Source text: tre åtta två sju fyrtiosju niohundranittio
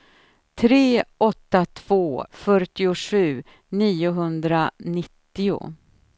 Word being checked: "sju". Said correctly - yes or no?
no